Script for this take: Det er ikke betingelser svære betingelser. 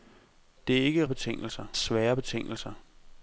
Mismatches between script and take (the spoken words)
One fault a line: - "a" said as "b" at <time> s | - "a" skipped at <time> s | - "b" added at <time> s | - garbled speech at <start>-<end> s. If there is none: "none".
none